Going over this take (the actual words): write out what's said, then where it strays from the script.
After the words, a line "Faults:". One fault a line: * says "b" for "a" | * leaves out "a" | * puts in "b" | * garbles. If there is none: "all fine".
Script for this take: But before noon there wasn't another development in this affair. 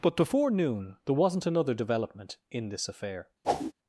But before noon there wasn't another development in this affair.
Faults:
all fine